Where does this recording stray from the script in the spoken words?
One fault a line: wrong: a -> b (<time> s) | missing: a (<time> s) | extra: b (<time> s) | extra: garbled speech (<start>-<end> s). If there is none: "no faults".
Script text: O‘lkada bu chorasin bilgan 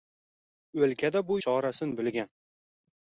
no faults